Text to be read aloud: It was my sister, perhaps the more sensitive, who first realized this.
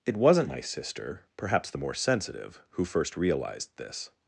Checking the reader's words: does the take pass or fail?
fail